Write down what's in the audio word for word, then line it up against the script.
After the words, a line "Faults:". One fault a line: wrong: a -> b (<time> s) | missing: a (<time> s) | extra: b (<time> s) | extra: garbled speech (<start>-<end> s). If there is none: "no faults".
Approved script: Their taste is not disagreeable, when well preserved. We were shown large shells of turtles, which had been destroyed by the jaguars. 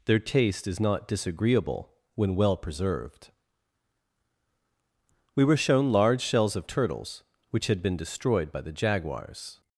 Their taste is not disagreeable, when well preserved. We were shown large shells of turtles, which had been destroyed by the jaguars.
Faults:
no faults